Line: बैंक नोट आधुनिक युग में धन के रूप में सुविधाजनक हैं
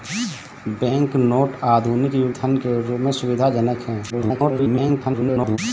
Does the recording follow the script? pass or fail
fail